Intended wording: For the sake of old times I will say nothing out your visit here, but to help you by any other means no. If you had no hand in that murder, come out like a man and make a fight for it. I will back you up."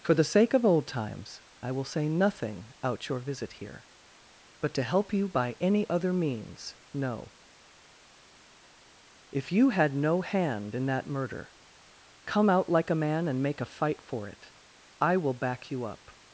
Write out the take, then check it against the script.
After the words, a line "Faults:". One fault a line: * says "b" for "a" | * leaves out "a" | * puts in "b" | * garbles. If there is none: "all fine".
For the sake of old times I will say nothing out your visit here, but to help you by any other means no. If you had no hand in that murder, come out like a man and make a fight for it. I will back you up."
Faults:
all fine